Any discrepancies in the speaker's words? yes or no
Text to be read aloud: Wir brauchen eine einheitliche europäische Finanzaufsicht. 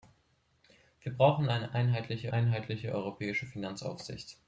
yes